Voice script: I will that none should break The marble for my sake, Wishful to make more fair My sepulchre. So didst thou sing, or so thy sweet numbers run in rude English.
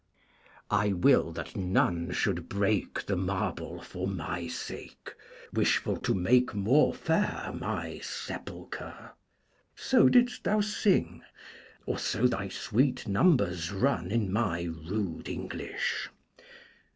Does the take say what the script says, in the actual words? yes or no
no